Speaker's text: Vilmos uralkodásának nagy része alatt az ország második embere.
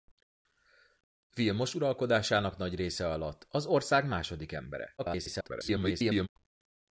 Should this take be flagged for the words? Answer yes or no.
yes